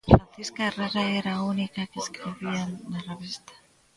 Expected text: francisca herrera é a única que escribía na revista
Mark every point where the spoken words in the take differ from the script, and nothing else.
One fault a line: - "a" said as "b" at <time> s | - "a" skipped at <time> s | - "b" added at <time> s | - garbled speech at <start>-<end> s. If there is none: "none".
- "é" said as "era" at 1.2 s